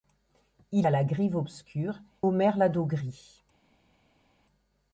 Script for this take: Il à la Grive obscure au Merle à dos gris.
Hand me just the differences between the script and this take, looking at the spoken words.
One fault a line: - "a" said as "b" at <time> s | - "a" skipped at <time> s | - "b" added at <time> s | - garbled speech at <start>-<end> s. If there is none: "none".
none